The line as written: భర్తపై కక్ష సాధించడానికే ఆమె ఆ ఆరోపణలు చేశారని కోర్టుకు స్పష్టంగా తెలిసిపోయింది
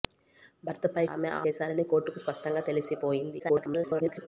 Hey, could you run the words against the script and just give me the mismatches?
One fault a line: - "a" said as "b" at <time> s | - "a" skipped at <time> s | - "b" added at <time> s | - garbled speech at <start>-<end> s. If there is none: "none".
- "కక్ష సాధించడానికే" skipped at 1.0 s
- "ఆరోపణలు" skipped at 1.4 s
- garbled speech at 3.4-4.3 s